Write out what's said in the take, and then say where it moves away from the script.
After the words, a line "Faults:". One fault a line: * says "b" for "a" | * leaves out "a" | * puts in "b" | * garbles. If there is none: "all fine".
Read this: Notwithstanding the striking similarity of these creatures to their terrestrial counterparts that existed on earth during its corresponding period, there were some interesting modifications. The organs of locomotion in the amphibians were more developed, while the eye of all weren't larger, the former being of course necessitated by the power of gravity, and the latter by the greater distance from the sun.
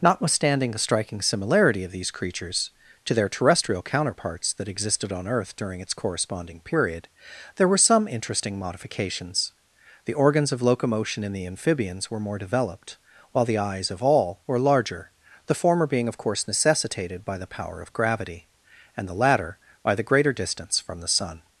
Notwithstanding the striking similarity of these creatures to their terrestrial counterparts that existed on earth during its corresponding period, there were some interesting modifications. The organs of locomotion in the amphibians were more developed, while the eyes of all were larger, the former being of course necessitated by the power of gravity, and the latter by the greater distance from the sun.
Faults:
* says "eyes" for "eye"
* says "were" for "weren't"